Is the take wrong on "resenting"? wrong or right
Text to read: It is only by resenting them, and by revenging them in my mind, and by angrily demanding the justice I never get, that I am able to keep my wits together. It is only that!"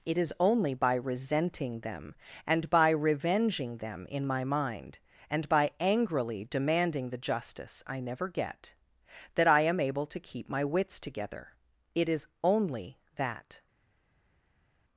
right